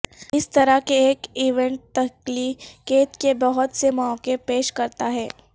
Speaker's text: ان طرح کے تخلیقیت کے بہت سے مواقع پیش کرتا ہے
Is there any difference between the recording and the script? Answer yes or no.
yes